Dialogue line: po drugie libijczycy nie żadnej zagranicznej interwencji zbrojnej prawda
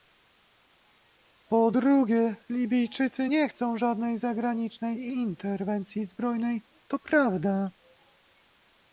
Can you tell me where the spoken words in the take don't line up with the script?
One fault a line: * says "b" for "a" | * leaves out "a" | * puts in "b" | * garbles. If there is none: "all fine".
* puts in "chcą"
* puts in "to"